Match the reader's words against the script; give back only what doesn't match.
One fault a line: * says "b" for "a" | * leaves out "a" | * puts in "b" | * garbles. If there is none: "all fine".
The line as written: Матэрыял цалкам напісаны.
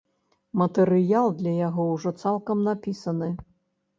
* puts in "для яго ўжо"